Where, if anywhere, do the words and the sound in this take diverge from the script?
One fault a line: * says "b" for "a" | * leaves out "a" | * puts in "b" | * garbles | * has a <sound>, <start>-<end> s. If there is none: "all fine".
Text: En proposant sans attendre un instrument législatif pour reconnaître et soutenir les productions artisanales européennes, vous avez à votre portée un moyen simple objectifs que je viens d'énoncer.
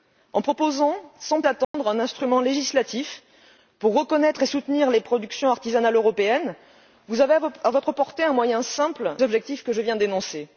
* has a dropout, 1.6-1.7 s